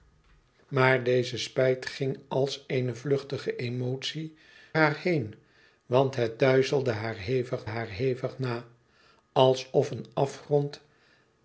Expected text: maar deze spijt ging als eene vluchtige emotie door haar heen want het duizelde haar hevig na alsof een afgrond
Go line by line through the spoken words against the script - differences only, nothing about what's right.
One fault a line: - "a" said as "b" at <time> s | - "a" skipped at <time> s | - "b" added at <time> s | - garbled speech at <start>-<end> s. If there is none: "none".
- "door" skipped at 4.3 s
- "haar hevig" added at 7.6 s